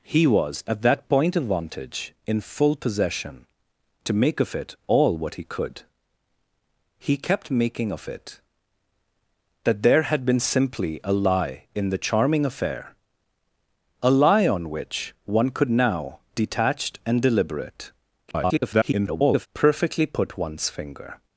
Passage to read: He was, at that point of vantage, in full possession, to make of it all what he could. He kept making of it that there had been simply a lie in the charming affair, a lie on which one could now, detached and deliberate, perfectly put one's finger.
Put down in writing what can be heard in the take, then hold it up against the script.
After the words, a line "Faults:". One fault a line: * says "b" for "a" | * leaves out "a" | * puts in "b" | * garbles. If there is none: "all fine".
He was, at that point of vantage, in full possession, to make of it all what he could. He kept making of it that there had been simply a lie in the charming affair, a lie on which one could now, detached and deliberate, [garbled] perfectly put one's finger.
Faults:
* garbles